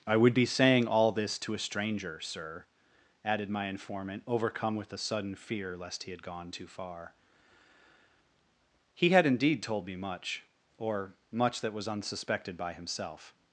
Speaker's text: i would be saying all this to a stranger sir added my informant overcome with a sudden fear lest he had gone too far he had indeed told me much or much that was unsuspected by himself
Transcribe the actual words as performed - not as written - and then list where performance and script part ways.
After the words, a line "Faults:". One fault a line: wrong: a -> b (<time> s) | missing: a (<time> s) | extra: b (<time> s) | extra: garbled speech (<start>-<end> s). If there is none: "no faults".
i would be saying all this to a stranger sir added my informant overcome with a sudden fear lest he had gone too far he had indeed told me much or much that was unsuspected by himself
Faults:
no faults